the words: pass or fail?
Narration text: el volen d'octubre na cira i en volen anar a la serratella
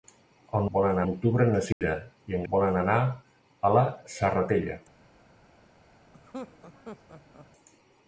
pass